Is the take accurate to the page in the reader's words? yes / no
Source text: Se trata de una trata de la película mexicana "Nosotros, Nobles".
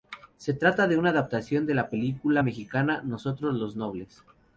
no